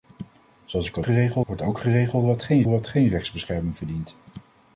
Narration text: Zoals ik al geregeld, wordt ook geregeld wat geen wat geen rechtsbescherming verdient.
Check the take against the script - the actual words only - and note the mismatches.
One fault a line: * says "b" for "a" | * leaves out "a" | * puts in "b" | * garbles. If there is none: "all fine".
all fine